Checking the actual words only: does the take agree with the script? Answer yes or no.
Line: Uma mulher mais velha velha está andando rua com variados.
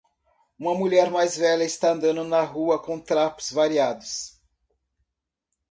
no